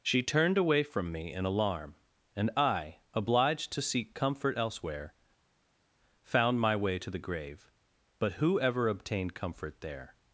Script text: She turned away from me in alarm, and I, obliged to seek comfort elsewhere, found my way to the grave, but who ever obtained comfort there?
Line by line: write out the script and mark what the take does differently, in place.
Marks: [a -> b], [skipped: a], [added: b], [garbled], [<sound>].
She turned away from me in alarm, and I, obliged to seek comfort elsewhere, found my way to the grave, but who ever obtained comfort there?